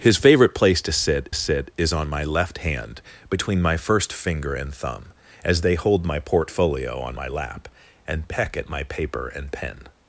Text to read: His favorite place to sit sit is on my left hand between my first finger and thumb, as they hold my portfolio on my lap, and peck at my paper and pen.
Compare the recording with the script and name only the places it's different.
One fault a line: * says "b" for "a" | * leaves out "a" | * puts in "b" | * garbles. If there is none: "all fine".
all fine